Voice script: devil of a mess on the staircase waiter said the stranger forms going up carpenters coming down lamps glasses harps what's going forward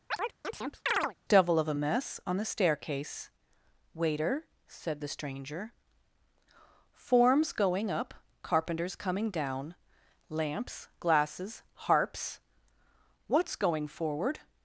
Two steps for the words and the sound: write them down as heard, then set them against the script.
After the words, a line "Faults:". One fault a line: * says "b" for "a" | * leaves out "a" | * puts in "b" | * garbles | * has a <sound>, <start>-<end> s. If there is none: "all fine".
devil of a mess on the staircase waiter said the stranger forms going up carpenters coming down lamps glasses harps what's going forward
Faults:
* has a chirp, 0.1-1.2 s